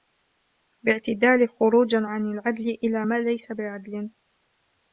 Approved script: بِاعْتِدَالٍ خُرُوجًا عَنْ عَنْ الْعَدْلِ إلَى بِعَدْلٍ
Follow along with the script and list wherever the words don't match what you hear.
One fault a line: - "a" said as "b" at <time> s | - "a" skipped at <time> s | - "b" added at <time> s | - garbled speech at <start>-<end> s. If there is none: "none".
- "عَنْ" skipped at 2.3 s
- "مَا لَيْسَ" added at 3.0 s